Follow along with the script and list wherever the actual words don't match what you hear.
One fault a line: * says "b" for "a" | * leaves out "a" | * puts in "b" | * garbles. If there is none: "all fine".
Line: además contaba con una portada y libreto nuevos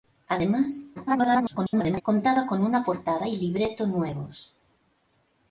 * garbles